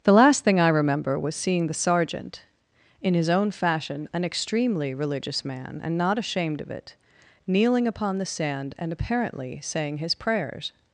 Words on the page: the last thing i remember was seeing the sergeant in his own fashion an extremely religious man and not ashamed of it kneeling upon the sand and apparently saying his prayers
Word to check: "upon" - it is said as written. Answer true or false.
true